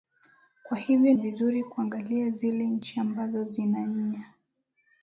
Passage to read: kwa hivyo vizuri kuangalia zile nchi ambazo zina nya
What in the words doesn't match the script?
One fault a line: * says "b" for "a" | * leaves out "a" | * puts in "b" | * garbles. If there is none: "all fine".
all fine